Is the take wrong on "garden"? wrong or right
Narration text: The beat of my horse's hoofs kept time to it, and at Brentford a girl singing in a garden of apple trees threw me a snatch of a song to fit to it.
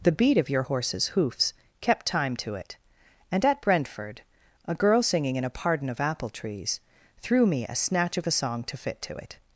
wrong